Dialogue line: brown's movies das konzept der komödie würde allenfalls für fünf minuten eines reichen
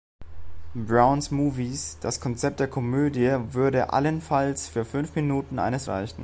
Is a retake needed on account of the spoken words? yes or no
no